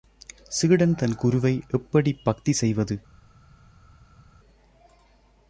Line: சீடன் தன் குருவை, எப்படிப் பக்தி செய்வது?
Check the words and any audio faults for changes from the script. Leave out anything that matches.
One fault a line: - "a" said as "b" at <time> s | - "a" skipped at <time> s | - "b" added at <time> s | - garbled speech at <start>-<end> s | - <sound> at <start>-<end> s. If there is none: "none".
none